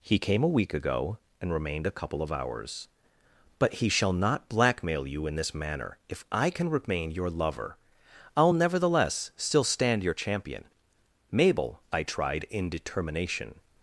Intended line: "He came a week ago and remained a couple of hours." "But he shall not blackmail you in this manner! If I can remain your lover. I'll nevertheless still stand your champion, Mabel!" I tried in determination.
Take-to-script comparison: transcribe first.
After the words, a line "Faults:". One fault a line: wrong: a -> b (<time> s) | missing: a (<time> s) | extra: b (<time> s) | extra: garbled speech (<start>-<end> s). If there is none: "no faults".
"He came a week ago and remained a couple of hours." "But he shall not blackmail you in this manner! If I can remain your lover. I'll nevertheless still stand your champion, Mabel!" I tried in determination.
Faults:
no faults